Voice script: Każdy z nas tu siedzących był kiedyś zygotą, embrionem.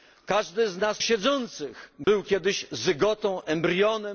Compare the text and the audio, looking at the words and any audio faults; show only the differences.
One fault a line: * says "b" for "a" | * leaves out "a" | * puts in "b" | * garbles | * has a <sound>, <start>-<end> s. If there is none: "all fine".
* leaves out "tu"
* has a dropout, 2.0-2.1 s